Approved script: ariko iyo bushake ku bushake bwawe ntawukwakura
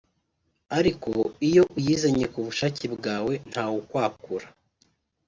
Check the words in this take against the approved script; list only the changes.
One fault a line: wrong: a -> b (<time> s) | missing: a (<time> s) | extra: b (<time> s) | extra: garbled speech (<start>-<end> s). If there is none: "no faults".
wrong: bushake -> uyizanye (1.8 s)